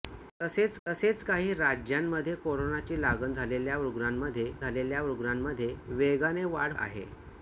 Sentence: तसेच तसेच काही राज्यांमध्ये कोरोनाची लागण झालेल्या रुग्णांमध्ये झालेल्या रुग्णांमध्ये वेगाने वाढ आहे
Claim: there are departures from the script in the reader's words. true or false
false